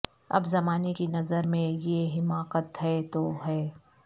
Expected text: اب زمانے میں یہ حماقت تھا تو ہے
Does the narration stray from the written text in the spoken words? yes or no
yes